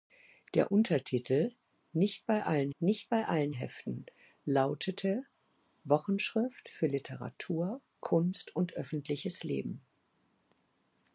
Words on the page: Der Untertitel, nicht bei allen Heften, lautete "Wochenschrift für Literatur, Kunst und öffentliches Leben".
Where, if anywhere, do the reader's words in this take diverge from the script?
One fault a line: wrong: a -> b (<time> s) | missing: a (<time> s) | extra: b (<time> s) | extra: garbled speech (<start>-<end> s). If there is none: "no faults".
extra: nicht bei allen (2.8 s)